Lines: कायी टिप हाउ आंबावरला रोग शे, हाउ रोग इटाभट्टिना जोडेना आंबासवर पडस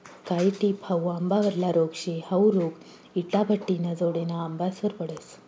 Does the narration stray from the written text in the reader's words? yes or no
no